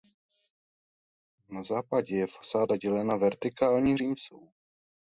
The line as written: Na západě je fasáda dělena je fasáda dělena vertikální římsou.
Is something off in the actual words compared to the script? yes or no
yes